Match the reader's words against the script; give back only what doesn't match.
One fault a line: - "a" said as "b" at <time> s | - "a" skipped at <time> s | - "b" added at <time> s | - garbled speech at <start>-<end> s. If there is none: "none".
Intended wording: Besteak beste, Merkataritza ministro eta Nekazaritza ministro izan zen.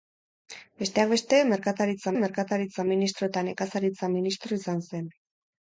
- "Merkataritza" added at 2.2 s